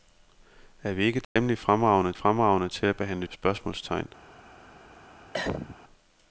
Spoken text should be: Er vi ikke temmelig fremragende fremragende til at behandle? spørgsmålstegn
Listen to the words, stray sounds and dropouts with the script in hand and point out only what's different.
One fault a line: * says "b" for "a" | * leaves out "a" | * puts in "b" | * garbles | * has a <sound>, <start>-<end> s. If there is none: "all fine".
* has a dropout, 1.2-1.4 s
* has a cough, 5.3-5.8 s